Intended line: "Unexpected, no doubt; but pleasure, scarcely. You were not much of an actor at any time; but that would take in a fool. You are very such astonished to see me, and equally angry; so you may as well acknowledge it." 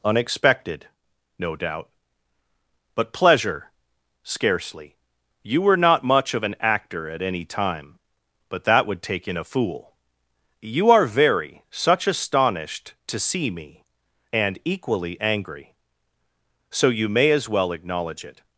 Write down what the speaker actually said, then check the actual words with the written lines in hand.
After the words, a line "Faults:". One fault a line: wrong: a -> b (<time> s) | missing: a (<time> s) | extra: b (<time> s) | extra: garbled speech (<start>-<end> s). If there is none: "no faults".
"Unexpected, no doubt; but pleasure, scarcely. You were not much of an actor at any time; but that would take in a fool. You are very such astonished to see me, and equally angry; so you may as well acknowledge it."
Faults:
no faults